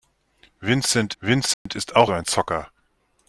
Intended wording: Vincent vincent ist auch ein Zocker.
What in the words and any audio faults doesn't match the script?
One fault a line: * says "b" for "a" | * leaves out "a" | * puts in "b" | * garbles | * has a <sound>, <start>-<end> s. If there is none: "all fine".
* has a dropout, 1.5-1.7 s